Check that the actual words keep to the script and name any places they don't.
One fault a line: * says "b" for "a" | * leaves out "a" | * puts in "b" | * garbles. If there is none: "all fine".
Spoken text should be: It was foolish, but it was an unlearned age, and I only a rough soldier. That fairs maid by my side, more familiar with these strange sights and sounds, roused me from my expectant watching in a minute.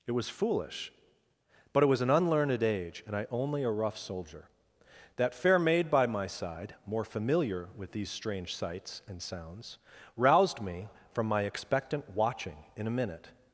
* says "fair" for "fairs"